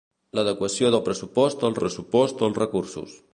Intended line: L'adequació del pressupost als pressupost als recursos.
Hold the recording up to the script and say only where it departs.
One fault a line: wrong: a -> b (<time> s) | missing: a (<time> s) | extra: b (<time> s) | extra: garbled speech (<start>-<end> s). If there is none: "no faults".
no faults